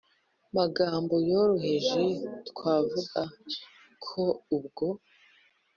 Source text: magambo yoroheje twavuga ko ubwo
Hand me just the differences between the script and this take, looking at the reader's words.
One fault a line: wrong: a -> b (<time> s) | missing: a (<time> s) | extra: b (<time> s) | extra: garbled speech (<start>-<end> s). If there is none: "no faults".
no faults